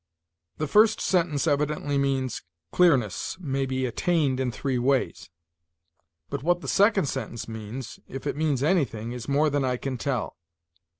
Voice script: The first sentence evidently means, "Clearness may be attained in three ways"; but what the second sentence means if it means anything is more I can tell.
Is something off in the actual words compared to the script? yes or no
yes